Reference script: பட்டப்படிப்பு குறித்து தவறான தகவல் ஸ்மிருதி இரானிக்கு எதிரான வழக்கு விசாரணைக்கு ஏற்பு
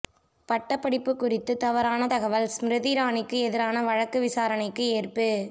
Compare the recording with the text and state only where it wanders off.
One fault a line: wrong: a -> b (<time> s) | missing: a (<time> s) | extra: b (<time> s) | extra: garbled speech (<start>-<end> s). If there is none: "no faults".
no faults